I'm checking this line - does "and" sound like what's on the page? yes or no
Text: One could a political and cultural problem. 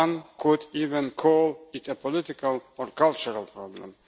no